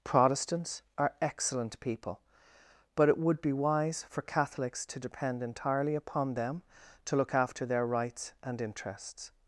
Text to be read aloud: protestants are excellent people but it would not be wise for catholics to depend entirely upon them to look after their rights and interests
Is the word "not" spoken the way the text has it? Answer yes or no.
no